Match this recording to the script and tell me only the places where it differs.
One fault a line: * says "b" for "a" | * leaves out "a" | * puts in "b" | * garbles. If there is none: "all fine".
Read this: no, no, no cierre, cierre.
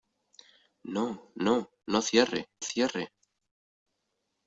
all fine